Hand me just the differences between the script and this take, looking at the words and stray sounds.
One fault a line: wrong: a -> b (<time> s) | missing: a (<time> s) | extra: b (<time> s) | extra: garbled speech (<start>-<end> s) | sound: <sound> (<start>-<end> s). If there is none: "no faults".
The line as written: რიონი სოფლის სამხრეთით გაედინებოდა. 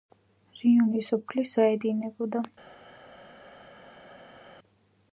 missing: სამხრეთით (1.5 s)